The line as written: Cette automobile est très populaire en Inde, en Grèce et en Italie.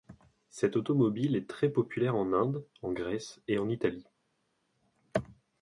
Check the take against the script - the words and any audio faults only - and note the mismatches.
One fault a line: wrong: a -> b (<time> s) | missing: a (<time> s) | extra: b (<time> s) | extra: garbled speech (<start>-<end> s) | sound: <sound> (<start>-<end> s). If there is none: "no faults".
no faults